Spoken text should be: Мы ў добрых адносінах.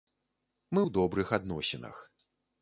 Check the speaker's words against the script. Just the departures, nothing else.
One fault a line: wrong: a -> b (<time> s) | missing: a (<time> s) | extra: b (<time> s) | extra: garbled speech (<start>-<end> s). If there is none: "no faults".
no faults